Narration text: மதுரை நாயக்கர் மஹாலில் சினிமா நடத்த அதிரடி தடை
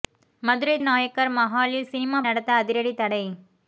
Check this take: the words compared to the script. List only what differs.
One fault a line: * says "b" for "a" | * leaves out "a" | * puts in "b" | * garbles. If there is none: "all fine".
all fine